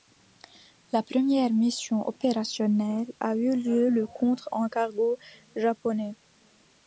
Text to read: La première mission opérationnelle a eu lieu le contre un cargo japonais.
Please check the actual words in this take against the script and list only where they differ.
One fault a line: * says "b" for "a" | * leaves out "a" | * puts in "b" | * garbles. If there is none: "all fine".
all fine